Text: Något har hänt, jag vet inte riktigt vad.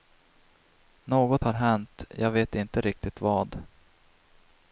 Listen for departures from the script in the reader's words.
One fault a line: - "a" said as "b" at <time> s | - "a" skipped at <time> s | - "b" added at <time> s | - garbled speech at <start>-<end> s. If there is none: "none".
none